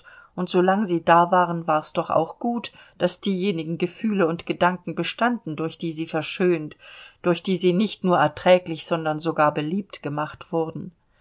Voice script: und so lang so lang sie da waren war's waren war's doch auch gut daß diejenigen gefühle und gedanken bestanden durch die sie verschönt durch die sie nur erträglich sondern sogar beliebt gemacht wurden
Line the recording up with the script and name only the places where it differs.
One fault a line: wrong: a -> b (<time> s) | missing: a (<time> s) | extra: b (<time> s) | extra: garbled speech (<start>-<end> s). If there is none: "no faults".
missing: so lang (0.8 s)
missing: waren war's (1.9 s)
extra: nicht (7.7 s)